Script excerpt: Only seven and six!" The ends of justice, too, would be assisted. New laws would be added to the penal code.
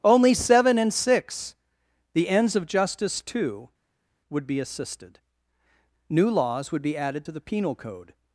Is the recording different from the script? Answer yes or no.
no